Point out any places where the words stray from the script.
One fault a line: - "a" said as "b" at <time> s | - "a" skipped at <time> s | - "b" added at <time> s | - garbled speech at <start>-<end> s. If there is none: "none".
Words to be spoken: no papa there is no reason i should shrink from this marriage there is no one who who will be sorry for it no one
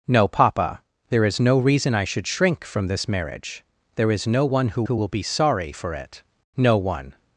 none